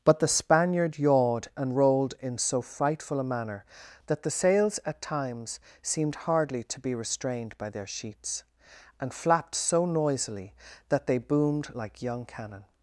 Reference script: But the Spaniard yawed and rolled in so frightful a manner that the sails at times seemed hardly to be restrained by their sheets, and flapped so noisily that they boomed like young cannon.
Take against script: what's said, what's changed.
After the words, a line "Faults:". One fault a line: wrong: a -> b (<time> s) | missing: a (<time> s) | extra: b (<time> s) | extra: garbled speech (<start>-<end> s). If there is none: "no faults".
But the Spaniard yawed and rolled in so frightful a manner that the sails at times seemed hardly to be restrained by their sheets, and flapped so noisily that they boomed like young cannon.
Faults:
no faults